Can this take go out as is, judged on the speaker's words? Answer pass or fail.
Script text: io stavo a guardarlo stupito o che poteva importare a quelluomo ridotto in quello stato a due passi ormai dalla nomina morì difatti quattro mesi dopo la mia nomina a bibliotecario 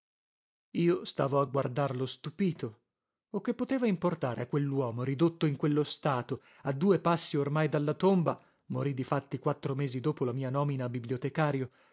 fail